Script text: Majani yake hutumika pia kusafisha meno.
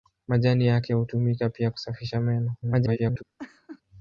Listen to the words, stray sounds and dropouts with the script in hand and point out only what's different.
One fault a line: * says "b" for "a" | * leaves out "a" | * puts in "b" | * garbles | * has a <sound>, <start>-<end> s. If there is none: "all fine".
* garbles
* has a laugh, 3.4-3.8 s